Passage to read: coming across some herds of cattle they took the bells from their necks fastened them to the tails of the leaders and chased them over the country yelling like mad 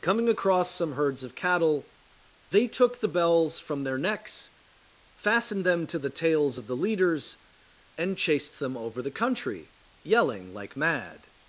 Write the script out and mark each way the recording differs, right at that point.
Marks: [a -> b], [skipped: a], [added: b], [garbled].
coming across some herds of cattle they took the bells from their necks fastened them to the tails of the leaders and chased them over the country yelling like mad